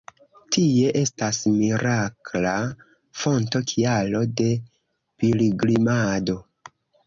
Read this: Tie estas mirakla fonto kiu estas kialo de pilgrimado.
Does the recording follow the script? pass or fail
fail